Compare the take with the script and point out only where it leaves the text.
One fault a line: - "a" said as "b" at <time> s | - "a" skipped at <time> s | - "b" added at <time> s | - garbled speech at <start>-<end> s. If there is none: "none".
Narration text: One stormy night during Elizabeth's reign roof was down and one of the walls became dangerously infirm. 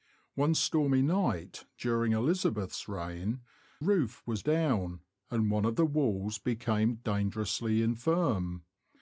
none